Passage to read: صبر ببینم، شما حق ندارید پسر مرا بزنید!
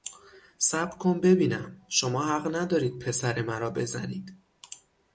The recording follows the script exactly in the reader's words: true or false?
false